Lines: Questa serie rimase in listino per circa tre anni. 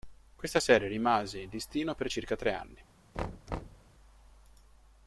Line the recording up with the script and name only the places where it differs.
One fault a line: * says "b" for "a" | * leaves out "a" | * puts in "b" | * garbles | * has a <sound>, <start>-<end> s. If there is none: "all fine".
* has a thud, 3.1-3.9 s